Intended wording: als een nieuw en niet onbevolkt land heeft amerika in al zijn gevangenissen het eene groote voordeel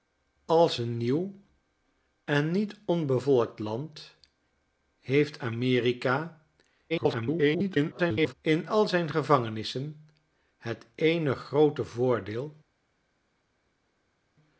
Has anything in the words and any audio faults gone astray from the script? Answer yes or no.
yes